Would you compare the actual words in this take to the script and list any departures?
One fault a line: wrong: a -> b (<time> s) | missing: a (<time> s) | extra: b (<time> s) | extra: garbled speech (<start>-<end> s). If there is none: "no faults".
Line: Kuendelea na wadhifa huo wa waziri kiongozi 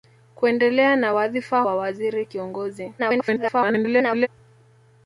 missing: huo (1.6 s)
extra: garbled speech (3.0-4.3 s)